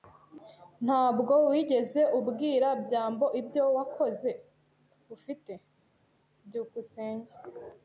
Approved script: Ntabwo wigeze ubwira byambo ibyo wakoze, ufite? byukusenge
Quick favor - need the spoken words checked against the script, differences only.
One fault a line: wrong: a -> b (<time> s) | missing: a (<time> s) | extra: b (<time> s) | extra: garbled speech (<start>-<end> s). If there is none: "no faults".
no faults